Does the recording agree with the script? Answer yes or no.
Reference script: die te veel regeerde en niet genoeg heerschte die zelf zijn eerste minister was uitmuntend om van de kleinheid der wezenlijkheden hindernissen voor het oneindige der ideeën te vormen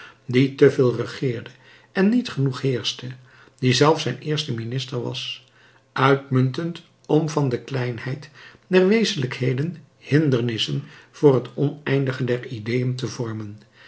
yes